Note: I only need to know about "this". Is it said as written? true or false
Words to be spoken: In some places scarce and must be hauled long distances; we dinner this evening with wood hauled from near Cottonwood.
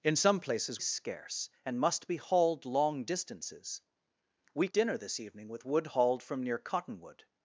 true